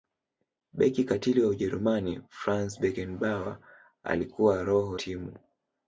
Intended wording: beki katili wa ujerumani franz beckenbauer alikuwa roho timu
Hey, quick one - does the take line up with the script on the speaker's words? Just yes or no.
yes